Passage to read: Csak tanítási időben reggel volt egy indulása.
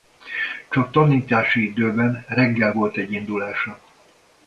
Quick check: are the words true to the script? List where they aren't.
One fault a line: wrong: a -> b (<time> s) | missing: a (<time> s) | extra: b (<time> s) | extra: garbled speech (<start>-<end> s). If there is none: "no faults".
no faults